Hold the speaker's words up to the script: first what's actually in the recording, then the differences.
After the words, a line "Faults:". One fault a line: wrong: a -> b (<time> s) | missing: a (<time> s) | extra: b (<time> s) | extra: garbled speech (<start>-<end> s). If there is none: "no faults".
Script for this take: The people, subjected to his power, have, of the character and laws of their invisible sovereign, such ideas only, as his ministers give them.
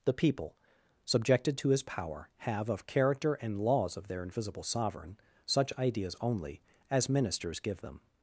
The people, subjected to his power, have, of character and laws of their invisible sovereign, such ideas only, as ministers give them.
Faults:
missing: the (2.9 s)
missing: his (7.1 s)